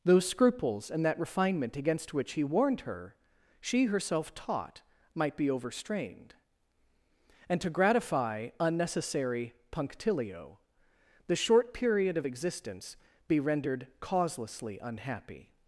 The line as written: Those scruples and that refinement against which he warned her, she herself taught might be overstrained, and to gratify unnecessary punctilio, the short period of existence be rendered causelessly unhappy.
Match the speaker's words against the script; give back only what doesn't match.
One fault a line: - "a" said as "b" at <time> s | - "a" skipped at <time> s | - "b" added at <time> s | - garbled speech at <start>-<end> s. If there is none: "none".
none